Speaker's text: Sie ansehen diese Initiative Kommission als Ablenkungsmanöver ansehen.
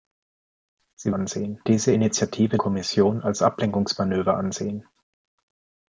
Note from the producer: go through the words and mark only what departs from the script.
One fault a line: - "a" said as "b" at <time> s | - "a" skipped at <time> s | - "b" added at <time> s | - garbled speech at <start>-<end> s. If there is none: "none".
none